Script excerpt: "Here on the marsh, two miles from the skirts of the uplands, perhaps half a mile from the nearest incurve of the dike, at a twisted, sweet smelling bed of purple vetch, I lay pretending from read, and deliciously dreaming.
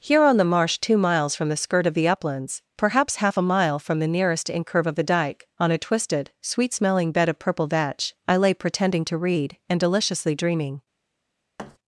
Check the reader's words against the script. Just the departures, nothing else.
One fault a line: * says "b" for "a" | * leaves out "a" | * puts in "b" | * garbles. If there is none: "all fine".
* says "skirt" for "skirts"
* says "on" for "at"
* says "to" for "from"